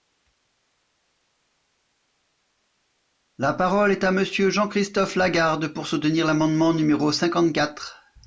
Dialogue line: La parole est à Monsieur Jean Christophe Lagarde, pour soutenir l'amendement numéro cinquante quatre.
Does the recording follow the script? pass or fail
pass